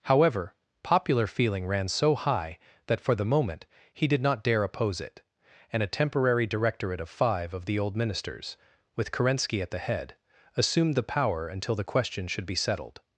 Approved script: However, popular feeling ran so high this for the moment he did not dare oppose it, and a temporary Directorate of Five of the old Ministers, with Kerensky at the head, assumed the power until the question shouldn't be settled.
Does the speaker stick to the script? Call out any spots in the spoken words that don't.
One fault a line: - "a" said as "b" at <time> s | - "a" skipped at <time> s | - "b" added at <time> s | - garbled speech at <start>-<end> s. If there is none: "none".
- "this" said as "that" at 2.9 s
- "shouldn't" said as "should" at 12.3 s